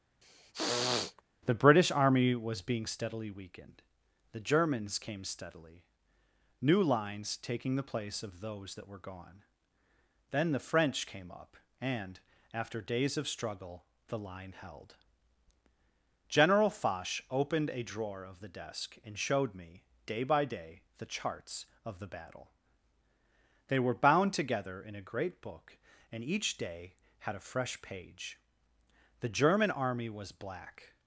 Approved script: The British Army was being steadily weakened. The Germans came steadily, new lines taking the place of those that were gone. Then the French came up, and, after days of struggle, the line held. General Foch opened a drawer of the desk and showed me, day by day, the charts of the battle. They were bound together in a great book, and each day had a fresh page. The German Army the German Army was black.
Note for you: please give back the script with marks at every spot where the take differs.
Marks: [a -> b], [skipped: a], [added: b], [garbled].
The British Army was being steadily weakened. The Germans came steadily, new lines taking the place of those that were gone. Then the French came up, and, after days of struggle, the line held. General Foch opened a drawer of the desk and showed me, day by day, the charts of the battle. They were bound together in a great book, and each day had a fresh page. The German Army [skipped: the German Army] was black.